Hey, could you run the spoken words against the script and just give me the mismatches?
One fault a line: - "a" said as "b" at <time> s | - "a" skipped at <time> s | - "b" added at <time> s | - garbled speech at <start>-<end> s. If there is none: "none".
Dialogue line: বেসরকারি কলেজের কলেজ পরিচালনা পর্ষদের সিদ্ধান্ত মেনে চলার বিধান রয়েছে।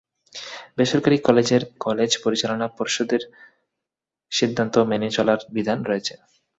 none